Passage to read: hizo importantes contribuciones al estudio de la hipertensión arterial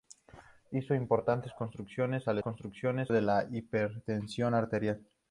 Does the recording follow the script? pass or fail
fail